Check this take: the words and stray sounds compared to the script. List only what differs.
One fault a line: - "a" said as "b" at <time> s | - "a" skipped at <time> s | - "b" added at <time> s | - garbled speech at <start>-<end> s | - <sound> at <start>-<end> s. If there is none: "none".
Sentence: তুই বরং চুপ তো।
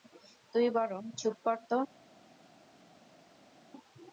- "কর" added at 1.4 s